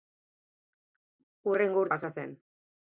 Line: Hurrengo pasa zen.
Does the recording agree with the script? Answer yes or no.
yes